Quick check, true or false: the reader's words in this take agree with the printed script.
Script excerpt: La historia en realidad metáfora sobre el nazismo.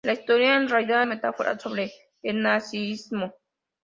true